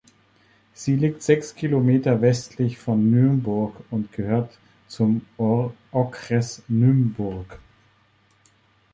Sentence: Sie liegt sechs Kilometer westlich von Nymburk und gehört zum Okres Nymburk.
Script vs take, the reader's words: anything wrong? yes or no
no